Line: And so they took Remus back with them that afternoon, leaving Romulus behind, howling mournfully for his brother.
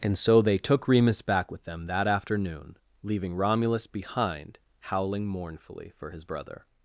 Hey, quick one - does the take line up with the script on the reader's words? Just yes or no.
yes